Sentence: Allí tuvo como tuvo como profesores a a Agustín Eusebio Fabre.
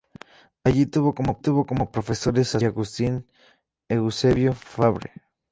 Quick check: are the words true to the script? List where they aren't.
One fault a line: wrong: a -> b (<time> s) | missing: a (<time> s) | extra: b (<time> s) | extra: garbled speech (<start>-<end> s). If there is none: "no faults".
no faults